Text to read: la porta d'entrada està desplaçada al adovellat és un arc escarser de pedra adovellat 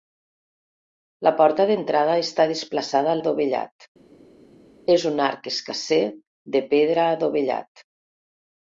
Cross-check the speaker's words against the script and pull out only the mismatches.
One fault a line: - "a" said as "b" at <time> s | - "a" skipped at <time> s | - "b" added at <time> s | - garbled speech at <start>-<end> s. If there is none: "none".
none